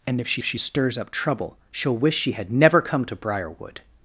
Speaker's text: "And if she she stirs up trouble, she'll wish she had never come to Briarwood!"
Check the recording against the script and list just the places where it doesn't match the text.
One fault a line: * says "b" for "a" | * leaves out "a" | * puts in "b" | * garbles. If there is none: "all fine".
all fine